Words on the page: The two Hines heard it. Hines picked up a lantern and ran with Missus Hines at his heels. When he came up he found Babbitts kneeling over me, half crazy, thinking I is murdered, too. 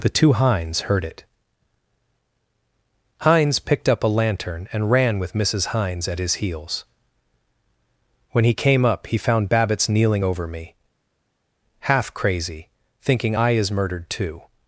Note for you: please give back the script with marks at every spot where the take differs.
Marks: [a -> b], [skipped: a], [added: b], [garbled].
The two Hines heard it. Hines picked up a lantern and ran with Missus Hines at his heels. When he came up he found Babbitts kneeling over me, half crazy, thinking I is murdered, too.